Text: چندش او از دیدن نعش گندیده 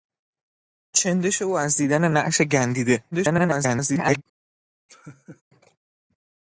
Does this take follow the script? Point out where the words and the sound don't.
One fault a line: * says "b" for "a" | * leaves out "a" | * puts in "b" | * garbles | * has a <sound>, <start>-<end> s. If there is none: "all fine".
* garbles
* has a laugh, 4.9-5.4 s